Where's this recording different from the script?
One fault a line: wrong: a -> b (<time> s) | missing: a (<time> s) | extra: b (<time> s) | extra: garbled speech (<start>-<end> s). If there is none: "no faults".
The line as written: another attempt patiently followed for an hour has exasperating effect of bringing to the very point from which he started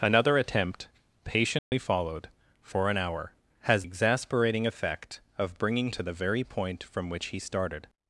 no faults